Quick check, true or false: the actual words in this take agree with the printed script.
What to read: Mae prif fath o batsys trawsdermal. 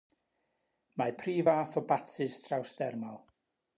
true